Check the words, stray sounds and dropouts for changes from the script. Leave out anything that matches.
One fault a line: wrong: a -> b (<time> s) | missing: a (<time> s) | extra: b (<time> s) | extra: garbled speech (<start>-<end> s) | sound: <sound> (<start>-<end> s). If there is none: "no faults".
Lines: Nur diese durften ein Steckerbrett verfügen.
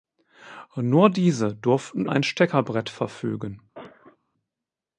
sound: cough (3.7-4.2 s)